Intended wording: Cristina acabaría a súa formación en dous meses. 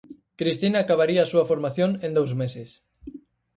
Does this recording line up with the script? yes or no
yes